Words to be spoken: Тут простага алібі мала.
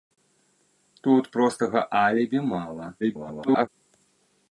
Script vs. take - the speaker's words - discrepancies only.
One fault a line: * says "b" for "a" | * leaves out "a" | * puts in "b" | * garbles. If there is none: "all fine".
* garbles